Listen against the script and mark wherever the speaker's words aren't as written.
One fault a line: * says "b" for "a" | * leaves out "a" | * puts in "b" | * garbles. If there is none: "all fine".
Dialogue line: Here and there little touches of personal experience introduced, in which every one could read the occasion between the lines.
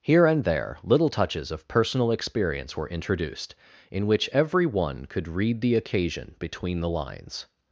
* puts in "were"